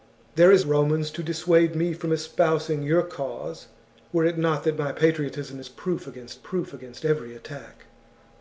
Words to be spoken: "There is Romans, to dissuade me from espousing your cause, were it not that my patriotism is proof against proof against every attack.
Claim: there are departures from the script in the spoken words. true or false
false